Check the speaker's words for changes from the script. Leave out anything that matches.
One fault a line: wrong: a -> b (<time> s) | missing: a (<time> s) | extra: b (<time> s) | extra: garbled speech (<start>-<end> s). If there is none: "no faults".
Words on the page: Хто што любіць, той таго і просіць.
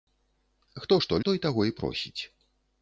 missing: любіць (1.2 s)